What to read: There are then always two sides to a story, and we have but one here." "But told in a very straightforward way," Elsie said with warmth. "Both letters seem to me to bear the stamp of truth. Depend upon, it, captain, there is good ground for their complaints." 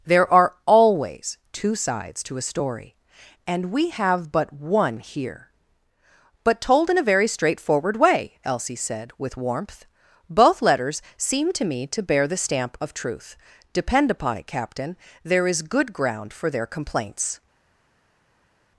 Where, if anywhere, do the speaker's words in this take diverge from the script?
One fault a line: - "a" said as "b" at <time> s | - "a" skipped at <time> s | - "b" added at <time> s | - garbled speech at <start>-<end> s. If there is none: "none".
- "then" skipped at 0.6 s